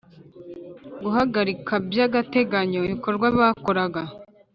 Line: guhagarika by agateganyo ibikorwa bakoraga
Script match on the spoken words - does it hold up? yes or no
yes